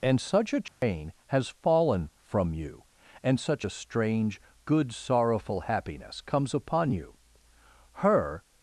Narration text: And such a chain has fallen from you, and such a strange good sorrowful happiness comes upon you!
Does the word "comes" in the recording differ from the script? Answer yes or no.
no